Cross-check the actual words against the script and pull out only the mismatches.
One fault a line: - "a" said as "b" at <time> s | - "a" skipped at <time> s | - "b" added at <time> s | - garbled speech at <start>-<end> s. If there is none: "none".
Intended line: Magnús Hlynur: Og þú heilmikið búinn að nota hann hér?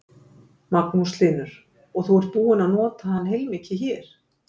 - "heilmikið" said as "ert" at 2.2 s
- "heilmikið" added at 3.3 s